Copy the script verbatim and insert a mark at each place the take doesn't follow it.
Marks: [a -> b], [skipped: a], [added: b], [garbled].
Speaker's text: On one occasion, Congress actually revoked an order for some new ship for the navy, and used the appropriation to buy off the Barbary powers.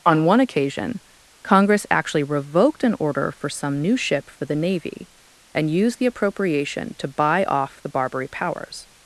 On one occasion, Congress actually revoked an order for some new ship for the navy, and used the appropriation to buy off the Barbary powers.